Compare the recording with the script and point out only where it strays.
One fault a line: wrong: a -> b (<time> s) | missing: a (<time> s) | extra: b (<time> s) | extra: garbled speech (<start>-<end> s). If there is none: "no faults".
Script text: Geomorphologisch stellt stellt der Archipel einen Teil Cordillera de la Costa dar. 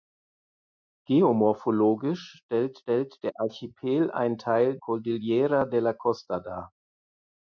no faults